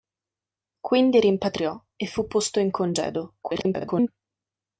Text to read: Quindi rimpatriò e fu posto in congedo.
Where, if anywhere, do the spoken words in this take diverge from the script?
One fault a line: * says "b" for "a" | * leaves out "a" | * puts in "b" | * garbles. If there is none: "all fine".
* garbles